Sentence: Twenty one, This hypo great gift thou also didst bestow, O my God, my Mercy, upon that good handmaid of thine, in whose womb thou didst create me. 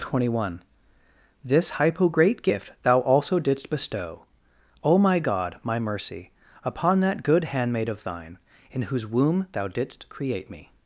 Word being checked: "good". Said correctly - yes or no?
yes